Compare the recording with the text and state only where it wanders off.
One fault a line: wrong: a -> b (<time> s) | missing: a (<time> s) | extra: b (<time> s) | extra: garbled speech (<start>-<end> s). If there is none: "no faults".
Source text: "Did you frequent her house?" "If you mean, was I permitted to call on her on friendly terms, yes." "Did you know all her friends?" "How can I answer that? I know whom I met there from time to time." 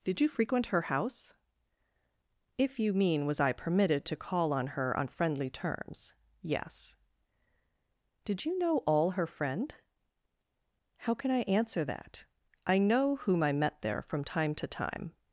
wrong: friends -> friend (9.3 s)